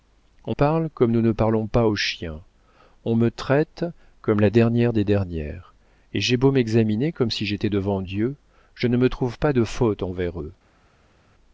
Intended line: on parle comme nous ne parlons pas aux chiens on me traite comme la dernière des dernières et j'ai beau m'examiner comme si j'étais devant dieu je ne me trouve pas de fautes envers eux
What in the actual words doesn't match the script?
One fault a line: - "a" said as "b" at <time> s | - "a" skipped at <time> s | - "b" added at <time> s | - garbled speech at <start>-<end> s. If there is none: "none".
none